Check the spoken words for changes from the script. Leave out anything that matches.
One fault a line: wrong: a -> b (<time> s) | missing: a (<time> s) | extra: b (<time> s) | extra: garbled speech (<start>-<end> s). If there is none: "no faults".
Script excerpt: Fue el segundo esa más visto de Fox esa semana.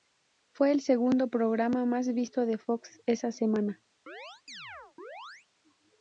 wrong: esa -> programa (1.3 s)